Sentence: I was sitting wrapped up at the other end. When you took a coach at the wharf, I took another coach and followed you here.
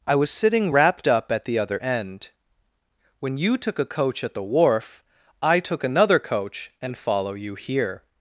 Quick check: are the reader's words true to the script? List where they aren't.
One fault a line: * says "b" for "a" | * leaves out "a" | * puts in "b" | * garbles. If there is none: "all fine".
* says "follow" for "followed"